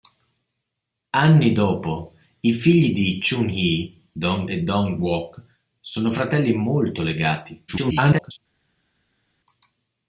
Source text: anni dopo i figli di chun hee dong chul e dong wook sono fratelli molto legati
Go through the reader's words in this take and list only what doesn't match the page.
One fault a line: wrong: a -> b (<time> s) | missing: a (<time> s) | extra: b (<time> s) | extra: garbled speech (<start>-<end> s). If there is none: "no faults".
missing: chul (4.5 s)
extra: garbled speech (7.7-8.4 s)